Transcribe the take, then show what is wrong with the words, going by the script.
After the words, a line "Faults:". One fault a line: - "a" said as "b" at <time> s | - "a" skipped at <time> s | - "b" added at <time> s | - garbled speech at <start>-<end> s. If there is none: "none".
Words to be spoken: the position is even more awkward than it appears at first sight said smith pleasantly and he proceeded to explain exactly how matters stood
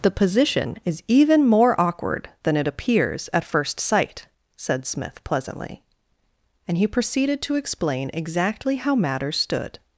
the position is even more awkward than it appears at first sight said smith pleasantly and he proceeded to explain exactly how matters stood
Faults:
none